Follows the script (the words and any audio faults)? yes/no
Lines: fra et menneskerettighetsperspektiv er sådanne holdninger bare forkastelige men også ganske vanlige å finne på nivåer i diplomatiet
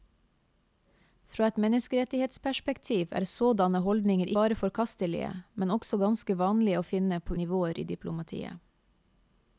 yes